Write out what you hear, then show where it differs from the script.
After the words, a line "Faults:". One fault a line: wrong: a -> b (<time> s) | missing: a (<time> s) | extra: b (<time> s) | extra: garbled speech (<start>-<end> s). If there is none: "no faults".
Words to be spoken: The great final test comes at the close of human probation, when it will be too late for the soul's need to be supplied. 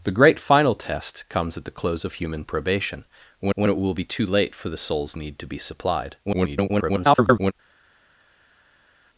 The great final test comes at the close of human probation, when when it will be too late for the soul's need to be supplied. [garbled]
Faults:
extra: when (3.5 s)
extra: garbled speech (6.2-7.5 s)